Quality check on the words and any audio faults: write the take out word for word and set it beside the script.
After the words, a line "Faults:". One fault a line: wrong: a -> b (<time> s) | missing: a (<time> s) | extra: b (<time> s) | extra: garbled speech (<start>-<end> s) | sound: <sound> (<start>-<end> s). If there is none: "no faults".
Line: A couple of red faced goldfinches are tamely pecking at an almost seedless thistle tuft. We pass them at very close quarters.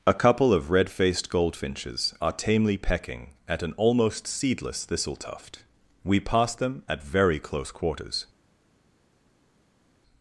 A couple of red faced goldfinches are tamely pecking at an almost seedless thistle tuft. We pass them at very close quarters.
Faults:
no faults